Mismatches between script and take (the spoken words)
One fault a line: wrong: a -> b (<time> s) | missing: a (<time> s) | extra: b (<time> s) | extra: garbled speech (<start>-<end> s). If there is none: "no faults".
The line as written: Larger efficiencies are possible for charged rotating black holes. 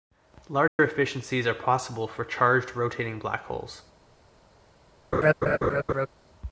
no faults